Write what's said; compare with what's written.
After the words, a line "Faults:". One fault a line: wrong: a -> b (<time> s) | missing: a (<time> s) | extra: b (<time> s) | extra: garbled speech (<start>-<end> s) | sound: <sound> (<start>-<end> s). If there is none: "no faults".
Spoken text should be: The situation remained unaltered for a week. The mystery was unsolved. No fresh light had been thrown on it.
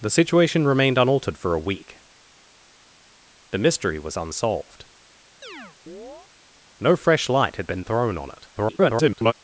The situation remained unaltered for a week. The mystery was unsolved. No fresh light had been thrown on it. [garbled]
Faults:
sound: chirp (5.4-6.3 s)
extra: garbled speech (8.6-9.3 s)